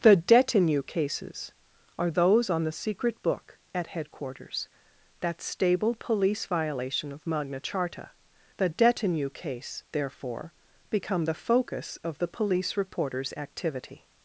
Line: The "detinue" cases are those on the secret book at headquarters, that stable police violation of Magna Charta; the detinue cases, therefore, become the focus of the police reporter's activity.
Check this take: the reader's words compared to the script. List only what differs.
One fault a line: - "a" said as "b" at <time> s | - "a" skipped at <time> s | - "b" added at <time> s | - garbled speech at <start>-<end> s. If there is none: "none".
- "cases" said as "case" at 9.3 s